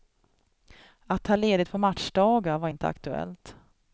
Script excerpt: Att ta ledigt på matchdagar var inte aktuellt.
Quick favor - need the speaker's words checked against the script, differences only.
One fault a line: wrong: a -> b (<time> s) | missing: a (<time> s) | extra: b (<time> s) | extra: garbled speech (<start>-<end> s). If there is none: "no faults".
no faults